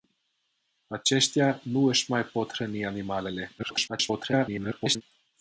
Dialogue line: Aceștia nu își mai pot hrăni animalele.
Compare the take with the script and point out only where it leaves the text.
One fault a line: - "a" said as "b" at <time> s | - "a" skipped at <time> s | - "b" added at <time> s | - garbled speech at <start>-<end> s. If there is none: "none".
- garbled speech at 3.6-5.0 s